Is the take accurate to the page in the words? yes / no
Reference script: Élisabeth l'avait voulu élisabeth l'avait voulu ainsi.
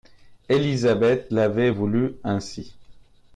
no